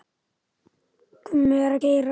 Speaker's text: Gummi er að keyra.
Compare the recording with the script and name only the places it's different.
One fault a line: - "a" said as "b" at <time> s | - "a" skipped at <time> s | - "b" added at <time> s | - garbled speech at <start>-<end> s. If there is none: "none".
none